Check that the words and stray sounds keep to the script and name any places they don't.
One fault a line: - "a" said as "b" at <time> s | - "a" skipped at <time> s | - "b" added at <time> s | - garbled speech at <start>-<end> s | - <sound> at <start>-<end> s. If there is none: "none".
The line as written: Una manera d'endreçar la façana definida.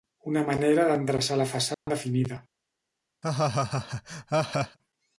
- dropout at 1.7-1.9 s
- laugh at 3.2-4.8 s